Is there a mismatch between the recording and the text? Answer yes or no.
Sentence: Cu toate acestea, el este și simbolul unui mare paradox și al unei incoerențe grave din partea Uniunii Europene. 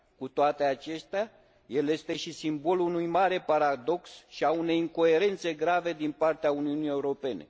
no